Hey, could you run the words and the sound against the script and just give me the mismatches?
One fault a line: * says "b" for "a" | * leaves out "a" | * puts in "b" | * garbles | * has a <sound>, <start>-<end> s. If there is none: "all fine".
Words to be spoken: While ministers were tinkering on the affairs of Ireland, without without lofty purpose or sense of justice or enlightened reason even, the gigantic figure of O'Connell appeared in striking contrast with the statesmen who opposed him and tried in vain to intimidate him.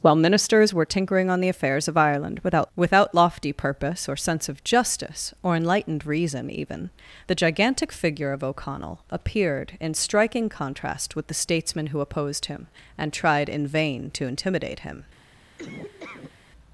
* has a laugh, 15.6-16.3 s